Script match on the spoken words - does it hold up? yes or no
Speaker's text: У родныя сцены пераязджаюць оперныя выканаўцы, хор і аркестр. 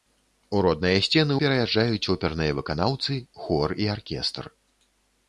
yes